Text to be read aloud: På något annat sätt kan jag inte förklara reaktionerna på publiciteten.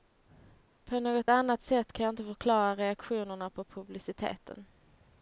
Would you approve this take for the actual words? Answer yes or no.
yes